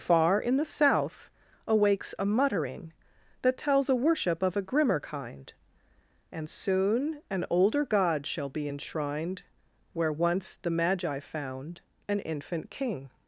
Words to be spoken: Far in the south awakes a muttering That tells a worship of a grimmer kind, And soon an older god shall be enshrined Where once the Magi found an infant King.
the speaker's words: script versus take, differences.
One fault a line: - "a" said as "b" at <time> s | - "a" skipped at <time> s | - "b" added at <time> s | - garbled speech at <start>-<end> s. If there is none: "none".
none